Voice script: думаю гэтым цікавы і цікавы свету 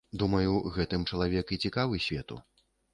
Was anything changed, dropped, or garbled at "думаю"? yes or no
no